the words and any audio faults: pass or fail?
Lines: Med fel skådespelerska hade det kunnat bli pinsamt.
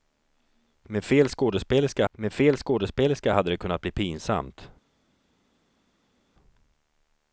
fail